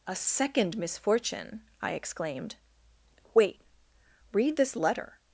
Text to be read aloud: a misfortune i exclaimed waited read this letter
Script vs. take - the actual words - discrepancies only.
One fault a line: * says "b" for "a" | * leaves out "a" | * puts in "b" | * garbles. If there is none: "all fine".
* puts in "second"
* says "wait" for "waited"